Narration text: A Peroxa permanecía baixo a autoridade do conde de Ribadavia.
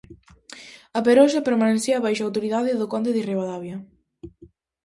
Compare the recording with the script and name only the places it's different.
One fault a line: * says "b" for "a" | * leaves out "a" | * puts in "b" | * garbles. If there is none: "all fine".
all fine